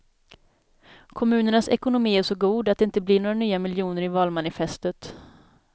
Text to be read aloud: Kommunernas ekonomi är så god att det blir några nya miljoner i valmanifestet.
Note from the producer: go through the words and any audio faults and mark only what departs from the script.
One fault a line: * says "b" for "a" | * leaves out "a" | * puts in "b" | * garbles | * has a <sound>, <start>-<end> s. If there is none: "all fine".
* puts in "inte"